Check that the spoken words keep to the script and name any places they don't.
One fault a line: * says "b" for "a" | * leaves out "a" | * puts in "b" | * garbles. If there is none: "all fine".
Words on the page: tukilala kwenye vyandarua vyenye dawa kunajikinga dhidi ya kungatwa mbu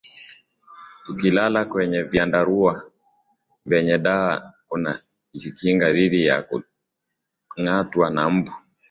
* puts in "na"